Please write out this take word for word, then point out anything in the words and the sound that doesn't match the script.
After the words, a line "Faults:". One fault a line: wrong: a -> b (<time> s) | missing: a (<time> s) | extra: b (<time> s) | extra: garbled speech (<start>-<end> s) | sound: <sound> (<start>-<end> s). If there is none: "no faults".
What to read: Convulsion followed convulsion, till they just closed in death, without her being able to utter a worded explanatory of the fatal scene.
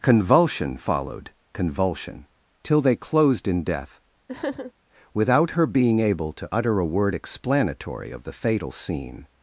Convulsion followed convulsion, till they closed in death, without her being able to utter a word explanatory of the fatal scene.
Faults:
missing: just (2.9 s)
sound: sniff (4.3-4.7 s)
wrong: worded -> word (6.9 s)